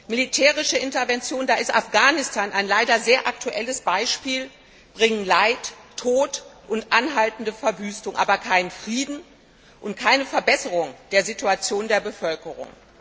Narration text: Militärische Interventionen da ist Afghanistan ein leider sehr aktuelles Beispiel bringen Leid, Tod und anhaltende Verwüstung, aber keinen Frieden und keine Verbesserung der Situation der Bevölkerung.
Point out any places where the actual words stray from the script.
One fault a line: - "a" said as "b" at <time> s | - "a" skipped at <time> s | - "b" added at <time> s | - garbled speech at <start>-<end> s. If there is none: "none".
none